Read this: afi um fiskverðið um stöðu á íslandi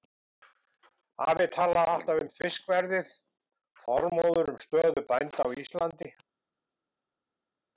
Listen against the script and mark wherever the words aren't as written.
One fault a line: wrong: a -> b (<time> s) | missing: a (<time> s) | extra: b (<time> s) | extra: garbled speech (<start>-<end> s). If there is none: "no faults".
extra: talaði alltaf (1.6 s)
extra: þormóður (3.9 s)
extra: bænda (5.1 s)